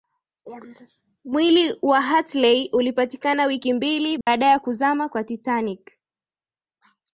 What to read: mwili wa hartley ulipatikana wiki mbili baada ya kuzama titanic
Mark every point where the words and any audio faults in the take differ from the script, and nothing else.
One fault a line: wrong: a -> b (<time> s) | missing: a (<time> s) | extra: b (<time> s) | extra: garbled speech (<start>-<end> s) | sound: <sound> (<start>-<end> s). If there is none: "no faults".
sound: dropout (4.2-4.3 s)
extra: kwa (5.1 s)